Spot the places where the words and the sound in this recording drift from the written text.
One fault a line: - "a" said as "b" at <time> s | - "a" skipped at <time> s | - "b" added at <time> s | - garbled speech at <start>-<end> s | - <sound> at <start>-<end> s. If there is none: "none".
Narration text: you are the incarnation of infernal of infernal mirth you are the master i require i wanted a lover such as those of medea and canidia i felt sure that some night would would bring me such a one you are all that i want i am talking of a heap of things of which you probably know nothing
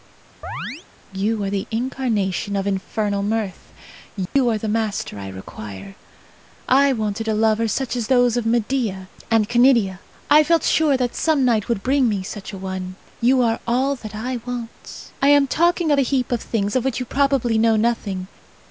- chirp at 0.4-0.9 s
- "of infernal" skipped at 3.2 s
- dropout at 4.3-4.4 s
- "would" skipped at 11.8 s